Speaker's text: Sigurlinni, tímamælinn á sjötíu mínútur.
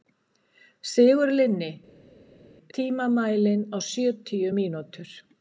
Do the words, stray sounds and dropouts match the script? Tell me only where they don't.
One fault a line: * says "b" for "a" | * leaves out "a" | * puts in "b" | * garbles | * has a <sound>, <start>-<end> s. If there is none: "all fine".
all fine